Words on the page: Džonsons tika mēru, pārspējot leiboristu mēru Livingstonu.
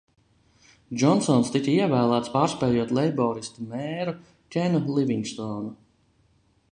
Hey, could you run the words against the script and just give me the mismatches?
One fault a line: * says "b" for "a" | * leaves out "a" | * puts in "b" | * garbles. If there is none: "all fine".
* says "ievēlēts" for "mēru"
* puts in "Kenu"